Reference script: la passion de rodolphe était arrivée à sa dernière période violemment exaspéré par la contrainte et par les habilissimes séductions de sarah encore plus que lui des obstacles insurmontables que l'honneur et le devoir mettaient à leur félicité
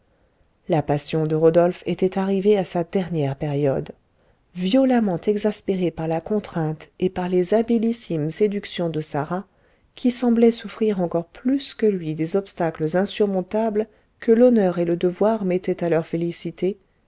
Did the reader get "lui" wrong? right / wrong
right